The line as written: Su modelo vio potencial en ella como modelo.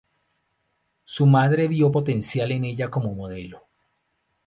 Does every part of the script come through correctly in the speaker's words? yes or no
no